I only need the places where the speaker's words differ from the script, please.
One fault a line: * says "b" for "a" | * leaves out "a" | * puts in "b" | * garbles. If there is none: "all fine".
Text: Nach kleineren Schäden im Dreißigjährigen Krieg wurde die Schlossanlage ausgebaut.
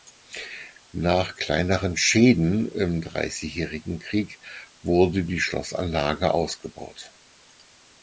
all fine